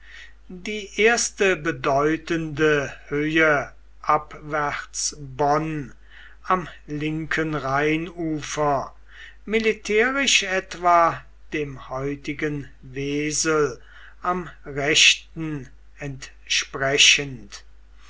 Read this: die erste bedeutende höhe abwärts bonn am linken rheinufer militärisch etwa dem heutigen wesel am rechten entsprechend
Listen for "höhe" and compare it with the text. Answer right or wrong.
right